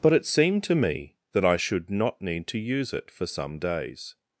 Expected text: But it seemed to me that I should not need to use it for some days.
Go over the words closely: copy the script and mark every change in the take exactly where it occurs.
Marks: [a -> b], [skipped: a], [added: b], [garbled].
But it seemed to me that I should not need to use it for some days.